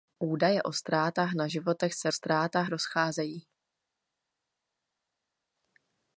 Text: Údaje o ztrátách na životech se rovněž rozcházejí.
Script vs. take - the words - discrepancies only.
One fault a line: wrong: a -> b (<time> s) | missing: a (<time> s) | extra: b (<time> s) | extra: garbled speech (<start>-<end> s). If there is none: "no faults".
wrong: rovněž -> ztrátách (2.1 s)